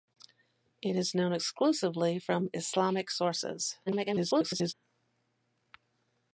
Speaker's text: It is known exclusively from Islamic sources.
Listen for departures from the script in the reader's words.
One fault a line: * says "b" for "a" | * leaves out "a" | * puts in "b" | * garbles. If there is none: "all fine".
* garbles